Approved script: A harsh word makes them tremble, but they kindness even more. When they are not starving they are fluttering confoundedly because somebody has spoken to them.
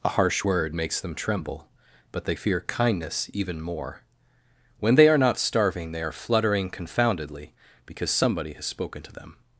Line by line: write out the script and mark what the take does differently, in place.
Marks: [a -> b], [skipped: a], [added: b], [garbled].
A harsh word makes them tremble, but they [added: fear] kindness even more. When they are not starving they are fluttering confoundedly because somebody has spoken to them.